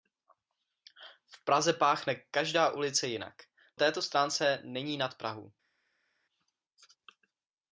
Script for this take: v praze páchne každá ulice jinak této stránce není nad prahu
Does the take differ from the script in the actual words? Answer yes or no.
no